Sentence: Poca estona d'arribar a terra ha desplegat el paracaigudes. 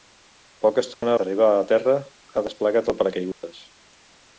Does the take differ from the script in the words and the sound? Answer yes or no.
yes